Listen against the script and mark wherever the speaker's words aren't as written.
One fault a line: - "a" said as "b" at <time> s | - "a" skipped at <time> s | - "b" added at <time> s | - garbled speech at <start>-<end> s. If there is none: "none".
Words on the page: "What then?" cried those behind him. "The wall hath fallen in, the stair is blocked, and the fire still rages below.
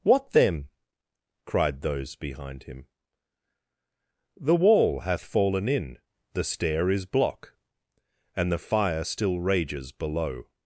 - "blocked" said as "block" at 7.1 s